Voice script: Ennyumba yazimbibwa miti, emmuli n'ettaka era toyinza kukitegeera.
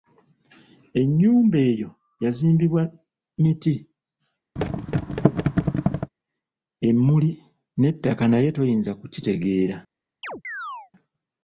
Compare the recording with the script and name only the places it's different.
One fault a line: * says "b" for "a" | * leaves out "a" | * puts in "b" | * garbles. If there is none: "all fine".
* puts in "eyo"
* says "naye" for "era"